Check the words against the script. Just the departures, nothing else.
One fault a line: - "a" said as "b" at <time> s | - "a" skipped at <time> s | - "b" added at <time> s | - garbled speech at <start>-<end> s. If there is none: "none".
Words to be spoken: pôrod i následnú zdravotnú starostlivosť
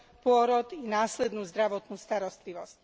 none